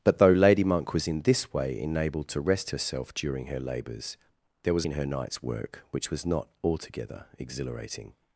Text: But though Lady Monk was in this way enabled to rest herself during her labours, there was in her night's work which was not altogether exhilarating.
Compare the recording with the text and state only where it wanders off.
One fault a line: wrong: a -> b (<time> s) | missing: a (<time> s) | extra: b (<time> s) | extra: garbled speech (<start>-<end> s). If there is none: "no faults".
no faults